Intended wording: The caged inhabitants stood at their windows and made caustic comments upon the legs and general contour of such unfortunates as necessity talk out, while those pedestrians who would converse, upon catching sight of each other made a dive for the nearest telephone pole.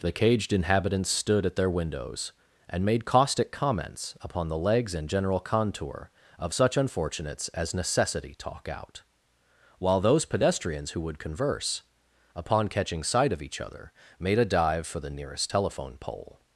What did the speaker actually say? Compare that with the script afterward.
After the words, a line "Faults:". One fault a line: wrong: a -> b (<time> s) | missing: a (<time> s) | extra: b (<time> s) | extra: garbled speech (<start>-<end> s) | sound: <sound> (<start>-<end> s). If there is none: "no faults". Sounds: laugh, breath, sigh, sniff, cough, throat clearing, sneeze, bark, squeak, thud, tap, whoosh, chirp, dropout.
The caged inhabitants stood at their windows and made caustic comments upon the legs and general contour of such unfortunates as necessity talk out, while those pedestrians who would converse, upon catching sight of each other made a dive for the nearest telephone pole.
Faults:
no faults